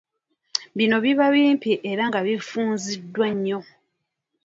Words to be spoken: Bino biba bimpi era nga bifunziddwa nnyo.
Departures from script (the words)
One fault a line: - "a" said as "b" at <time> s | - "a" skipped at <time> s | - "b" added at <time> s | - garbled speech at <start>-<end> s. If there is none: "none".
none